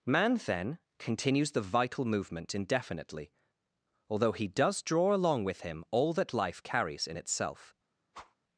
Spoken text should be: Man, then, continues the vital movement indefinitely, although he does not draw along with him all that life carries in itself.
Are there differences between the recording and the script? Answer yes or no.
yes